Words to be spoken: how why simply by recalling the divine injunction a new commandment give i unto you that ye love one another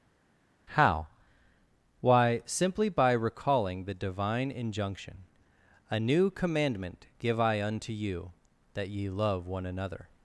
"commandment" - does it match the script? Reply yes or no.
yes